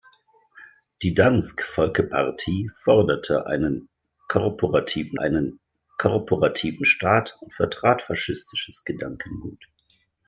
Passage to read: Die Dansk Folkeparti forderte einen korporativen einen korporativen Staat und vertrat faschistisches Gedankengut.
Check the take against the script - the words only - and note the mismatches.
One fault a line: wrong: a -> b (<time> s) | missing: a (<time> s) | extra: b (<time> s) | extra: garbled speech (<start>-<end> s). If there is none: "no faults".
no faults